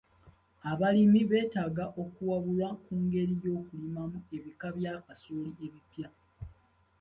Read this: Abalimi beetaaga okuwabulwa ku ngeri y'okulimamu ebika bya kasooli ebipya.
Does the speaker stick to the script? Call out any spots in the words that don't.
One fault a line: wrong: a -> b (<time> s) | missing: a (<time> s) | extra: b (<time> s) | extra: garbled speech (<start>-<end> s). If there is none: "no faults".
no faults